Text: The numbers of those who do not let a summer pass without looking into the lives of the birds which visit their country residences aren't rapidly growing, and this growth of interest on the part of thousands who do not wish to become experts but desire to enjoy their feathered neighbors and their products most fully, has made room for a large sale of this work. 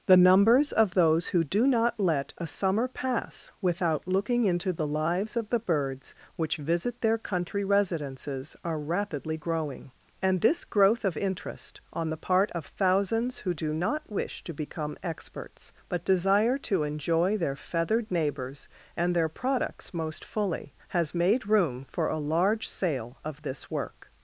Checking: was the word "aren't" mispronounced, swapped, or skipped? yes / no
yes